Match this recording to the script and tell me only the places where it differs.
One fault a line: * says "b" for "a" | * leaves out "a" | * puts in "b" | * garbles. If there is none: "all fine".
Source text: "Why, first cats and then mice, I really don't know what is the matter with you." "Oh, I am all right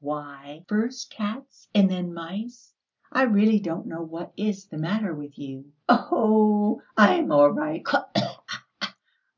all fine